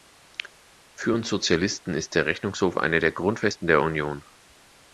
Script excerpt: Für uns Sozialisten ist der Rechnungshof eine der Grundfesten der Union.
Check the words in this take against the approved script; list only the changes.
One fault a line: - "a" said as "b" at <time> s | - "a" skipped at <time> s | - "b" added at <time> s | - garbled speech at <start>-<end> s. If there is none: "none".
none